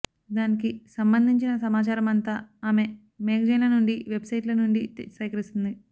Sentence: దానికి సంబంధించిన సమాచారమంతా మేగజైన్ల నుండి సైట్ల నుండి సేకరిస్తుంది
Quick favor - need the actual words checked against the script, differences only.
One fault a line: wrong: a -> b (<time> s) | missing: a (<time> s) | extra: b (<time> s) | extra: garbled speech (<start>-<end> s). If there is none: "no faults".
extra: ఆమె (2.6 s)
extra: వెబ్ (4.1 s)